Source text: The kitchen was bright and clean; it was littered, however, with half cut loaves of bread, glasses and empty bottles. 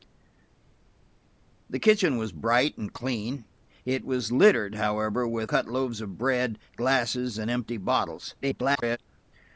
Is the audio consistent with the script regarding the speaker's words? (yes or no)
no